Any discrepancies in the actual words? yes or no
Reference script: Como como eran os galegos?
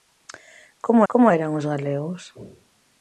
no